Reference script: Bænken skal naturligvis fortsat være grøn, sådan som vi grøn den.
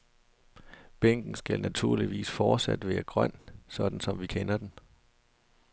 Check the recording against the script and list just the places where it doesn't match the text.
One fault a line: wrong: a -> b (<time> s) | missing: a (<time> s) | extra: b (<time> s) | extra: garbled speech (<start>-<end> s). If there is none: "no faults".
wrong: grøn -> kender (4.2 s)